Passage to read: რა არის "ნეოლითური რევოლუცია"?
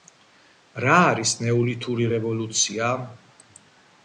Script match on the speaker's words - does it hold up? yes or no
yes